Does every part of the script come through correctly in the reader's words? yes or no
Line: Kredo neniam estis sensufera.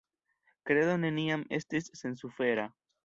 yes